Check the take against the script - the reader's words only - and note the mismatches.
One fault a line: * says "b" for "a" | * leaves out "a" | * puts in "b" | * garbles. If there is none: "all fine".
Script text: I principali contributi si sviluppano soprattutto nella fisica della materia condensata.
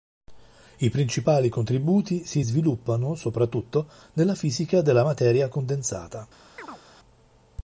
all fine